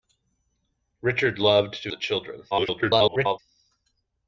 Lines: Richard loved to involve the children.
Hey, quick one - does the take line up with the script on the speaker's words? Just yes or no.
no